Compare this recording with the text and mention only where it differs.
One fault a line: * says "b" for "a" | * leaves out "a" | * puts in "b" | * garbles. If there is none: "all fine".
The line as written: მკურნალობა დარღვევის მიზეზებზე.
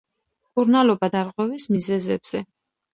all fine